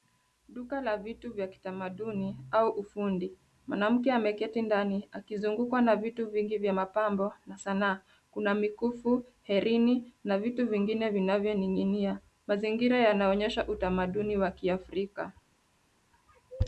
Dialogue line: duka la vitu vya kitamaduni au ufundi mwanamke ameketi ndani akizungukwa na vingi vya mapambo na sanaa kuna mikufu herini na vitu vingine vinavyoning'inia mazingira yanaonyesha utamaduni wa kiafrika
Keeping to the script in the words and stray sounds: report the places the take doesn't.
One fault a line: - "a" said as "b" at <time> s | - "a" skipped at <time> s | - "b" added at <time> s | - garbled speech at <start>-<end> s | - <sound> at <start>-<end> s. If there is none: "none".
- "vitu" added at 6.0 s